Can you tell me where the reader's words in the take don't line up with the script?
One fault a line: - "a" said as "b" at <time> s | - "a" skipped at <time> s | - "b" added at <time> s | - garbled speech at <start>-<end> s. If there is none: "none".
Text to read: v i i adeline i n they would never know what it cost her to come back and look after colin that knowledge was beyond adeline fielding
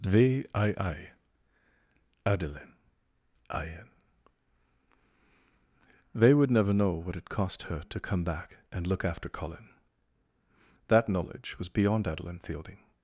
none